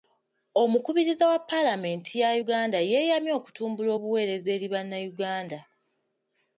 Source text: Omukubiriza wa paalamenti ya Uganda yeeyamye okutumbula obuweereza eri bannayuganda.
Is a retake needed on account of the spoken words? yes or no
no